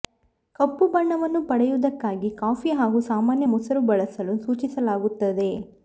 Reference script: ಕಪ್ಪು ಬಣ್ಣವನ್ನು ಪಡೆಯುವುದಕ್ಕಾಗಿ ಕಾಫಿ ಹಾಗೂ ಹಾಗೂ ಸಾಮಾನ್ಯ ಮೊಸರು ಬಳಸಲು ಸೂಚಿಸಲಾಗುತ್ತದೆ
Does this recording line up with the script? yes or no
no